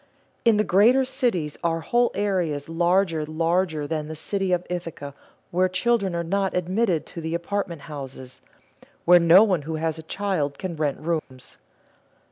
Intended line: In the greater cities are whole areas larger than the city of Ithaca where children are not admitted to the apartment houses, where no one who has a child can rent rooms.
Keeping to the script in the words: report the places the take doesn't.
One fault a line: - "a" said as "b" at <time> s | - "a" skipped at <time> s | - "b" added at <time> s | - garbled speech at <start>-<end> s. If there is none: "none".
- "larger" added at 3.3 s